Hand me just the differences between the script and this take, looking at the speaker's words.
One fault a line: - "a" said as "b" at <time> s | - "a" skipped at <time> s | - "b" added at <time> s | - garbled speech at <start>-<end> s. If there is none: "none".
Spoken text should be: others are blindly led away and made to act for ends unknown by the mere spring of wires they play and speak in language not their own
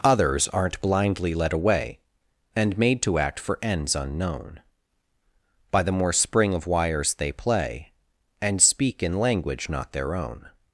- "are" said as "aren't" at 0.5 s
- "mere" said as "more" at 5.9 s